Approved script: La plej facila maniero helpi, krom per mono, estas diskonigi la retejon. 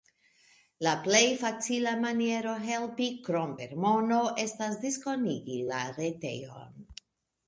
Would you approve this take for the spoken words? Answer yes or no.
yes